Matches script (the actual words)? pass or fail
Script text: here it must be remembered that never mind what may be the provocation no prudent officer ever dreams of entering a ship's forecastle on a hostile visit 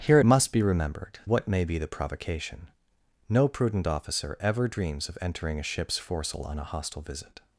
fail